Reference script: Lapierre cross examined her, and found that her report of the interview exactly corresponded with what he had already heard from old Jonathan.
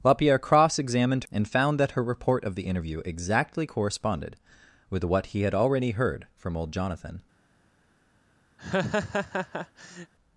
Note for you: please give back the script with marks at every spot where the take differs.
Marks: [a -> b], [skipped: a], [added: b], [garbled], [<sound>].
Lapierre cross examined [skipped: her,] and found that her report of the interview exactly corresponded with what he had already heard from old Jonathan. [laugh]